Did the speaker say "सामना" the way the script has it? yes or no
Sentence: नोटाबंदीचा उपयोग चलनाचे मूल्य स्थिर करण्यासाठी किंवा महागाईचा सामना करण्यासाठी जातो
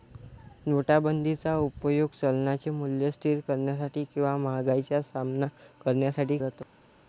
yes